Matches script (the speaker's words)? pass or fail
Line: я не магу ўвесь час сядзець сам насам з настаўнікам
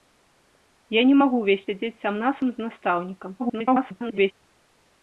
fail